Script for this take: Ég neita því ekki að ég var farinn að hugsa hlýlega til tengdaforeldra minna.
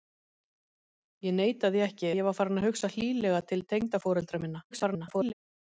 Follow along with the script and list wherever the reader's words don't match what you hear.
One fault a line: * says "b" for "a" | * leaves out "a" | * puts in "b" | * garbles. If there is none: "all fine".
* leaves out "að"
* garbles